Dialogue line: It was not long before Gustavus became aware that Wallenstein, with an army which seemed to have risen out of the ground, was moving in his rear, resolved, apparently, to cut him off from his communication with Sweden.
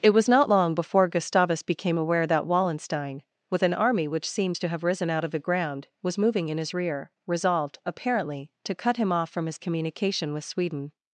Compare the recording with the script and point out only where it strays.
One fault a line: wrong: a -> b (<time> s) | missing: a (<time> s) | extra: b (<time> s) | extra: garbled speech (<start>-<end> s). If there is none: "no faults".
no faults